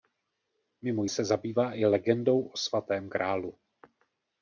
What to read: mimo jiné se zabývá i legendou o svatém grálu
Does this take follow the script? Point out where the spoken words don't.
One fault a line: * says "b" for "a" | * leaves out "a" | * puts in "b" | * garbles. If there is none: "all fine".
* leaves out "jiné"